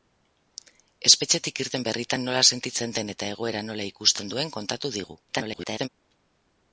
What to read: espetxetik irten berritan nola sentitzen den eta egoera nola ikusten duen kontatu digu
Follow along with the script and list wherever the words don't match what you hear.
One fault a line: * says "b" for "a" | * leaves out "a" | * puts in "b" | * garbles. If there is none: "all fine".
* garbles